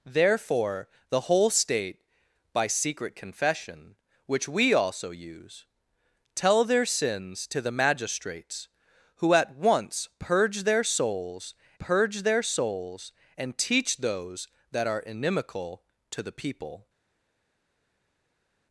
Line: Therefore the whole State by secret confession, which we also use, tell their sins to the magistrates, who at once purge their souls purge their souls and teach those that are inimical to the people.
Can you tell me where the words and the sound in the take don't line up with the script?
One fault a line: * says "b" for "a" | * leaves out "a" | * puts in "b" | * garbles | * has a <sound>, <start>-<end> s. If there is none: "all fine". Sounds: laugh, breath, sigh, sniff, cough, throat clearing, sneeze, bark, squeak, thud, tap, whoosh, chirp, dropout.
all fine